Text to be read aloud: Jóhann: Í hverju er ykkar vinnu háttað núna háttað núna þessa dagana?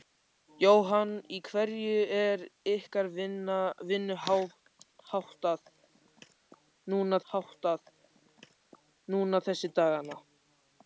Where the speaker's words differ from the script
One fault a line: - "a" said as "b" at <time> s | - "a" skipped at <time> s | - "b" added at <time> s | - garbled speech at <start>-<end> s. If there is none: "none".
none